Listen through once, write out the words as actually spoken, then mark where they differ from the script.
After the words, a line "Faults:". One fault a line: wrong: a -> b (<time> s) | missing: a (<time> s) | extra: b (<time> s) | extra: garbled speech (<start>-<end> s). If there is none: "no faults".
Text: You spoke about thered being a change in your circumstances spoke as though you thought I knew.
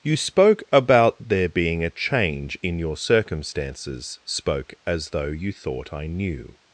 You spoke about there being a change in your circumstances spoke as though you thought I knew.
Faults:
wrong: thered -> there (1.3 s)